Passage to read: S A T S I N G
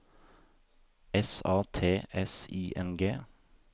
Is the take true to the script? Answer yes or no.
yes